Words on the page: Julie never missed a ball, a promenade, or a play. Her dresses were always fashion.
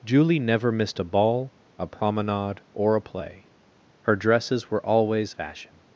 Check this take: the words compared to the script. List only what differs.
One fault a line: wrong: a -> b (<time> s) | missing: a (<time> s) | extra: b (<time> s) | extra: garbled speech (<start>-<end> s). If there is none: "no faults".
no faults